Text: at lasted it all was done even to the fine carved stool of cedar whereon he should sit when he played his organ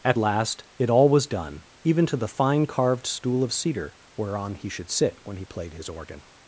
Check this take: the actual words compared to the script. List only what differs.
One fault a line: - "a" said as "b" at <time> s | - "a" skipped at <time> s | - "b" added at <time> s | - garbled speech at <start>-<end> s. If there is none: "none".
- "lasted" said as "last" at 0.2 s